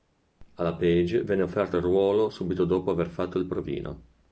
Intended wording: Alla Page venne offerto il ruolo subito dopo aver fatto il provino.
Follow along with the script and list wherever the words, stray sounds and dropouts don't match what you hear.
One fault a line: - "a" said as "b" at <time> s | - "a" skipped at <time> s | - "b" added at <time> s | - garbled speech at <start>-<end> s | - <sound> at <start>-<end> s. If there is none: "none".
none